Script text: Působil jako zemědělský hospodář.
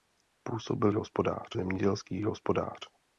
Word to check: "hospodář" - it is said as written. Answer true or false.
true